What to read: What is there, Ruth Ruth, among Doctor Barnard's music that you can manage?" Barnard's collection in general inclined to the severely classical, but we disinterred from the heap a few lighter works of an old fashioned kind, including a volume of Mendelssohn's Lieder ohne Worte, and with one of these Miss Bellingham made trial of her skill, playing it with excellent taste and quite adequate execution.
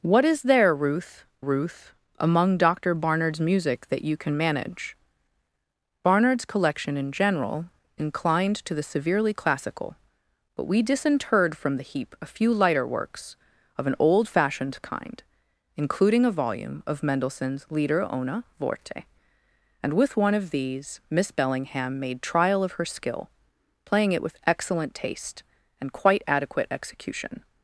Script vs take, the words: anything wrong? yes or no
no